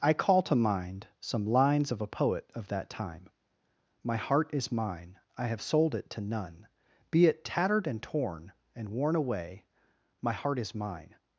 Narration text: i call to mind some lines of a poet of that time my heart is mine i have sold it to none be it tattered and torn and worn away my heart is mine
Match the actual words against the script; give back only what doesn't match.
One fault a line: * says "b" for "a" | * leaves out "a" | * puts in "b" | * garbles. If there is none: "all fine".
all fine